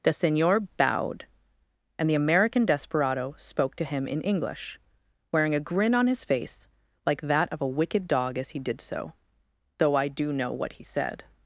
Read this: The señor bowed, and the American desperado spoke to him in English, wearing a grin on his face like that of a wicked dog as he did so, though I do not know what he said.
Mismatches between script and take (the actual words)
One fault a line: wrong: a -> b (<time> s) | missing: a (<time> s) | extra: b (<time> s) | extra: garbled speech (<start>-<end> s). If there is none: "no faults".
missing: not (10.3 s)